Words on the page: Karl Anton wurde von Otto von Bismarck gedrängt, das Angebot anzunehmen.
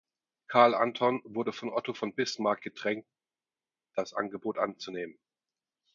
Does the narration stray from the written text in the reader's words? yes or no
no